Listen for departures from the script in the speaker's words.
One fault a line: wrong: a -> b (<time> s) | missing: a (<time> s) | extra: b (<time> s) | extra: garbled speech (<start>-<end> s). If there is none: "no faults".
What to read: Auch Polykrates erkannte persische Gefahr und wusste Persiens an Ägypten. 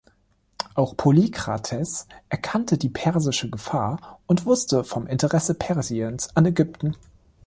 extra: die (2.8 s)
extra: vom Interesse (4.9 s)